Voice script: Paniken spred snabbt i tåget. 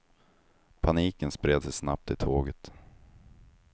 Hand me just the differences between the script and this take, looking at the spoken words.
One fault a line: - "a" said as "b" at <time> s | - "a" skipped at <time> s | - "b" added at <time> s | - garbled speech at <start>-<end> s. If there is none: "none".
- "sig" added at 1.6 s